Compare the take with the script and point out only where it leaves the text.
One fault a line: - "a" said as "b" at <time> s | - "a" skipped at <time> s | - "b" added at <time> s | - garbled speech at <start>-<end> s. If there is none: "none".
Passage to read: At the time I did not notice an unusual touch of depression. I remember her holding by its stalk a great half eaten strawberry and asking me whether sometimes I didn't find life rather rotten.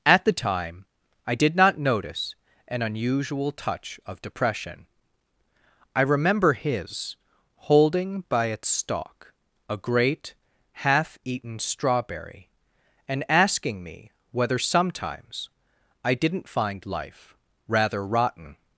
- "her" said as "his" at 6.5 s